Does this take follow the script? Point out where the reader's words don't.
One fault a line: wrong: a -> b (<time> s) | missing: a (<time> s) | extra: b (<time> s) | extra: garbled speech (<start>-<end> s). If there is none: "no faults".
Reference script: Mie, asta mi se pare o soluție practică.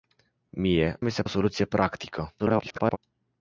missing: asta (1.0 s)
missing: pare (1.2 s)
extra: garbled speech (2.4-3.0 s)